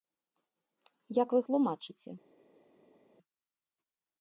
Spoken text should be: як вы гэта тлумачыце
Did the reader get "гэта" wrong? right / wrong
wrong